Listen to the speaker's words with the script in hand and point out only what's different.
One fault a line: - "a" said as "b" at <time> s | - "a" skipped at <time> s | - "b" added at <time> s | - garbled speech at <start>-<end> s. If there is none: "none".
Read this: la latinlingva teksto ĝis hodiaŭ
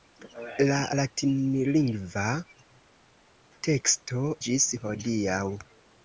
none